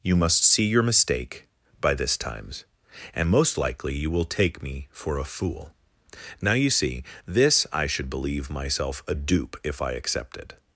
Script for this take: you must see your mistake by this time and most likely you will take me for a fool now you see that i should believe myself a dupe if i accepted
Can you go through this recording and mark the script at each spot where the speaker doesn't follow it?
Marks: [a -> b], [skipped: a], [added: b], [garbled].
you must see your mistake by this [time -> times] and most likely you will take me for a fool now you see [that -> this] i should believe myself a dupe if i accepted